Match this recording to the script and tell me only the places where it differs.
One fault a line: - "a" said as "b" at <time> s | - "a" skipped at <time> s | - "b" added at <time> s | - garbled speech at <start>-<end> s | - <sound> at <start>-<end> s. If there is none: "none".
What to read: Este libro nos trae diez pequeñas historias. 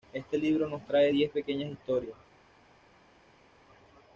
none